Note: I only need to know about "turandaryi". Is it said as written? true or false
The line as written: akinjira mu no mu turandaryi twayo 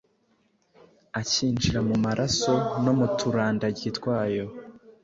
true